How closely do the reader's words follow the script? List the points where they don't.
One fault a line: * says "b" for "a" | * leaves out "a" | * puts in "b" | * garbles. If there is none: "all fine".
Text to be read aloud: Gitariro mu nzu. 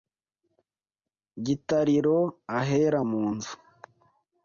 * puts in "ahera"